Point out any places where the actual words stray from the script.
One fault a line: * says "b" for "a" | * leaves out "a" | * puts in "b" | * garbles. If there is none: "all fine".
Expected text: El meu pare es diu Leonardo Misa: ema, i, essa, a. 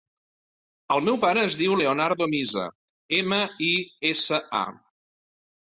all fine